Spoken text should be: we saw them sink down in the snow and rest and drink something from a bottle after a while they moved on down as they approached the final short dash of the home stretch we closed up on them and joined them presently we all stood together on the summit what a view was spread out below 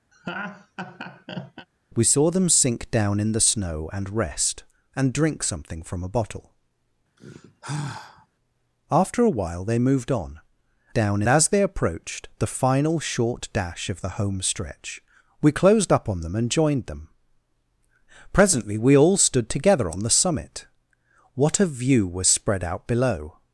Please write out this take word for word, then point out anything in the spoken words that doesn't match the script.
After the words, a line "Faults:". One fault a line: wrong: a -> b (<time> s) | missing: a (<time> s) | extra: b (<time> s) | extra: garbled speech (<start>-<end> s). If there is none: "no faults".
we saw them sink down in the snow and rest and drink something from a bottle after a while they moved on down as they approached the final short dash of the home stretch we closed up on them and joined them presently we all stood together on the summit what a view was spread out below
Faults:
no faults